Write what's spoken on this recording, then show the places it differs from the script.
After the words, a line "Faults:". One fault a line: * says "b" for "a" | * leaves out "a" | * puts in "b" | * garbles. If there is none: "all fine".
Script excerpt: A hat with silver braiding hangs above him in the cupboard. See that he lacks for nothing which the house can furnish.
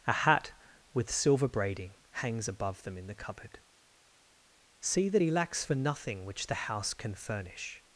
A hat with silver braiding hangs above them in the cupboard. See that he lacks for nothing which the house can furnish.
Faults:
* says "them" for "him"